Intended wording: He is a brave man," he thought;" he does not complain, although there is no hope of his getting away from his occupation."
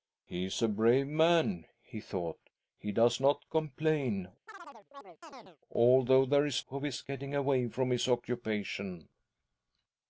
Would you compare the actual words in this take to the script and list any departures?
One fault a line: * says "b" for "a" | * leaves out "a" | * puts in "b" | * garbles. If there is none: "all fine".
* leaves out "no hope"